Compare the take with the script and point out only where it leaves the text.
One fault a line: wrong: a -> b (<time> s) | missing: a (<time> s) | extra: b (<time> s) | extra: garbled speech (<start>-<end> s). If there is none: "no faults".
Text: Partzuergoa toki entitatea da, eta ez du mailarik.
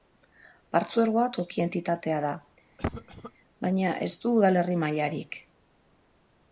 wrong: eta -> baina (3.7 s)
extra: udalerri (4.4 s)